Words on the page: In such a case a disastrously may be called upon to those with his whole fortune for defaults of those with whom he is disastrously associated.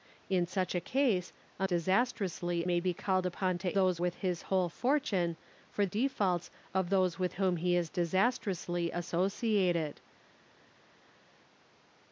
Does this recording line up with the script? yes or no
yes